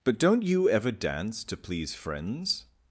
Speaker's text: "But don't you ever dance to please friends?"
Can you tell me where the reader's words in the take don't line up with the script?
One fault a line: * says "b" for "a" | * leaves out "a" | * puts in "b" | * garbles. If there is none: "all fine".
all fine